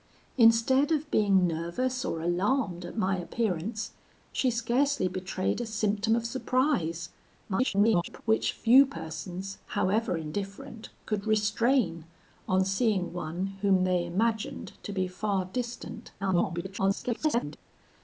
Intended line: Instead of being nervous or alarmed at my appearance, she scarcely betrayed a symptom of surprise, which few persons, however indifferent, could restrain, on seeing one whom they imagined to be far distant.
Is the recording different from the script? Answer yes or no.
yes